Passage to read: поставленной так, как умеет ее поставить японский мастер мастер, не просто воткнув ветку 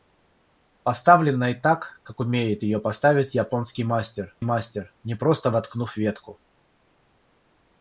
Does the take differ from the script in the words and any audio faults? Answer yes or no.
no